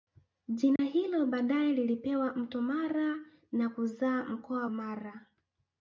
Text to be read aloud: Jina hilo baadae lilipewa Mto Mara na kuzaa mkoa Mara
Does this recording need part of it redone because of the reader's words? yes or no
no